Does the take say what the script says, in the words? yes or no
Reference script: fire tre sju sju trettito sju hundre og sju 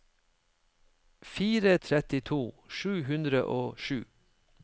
no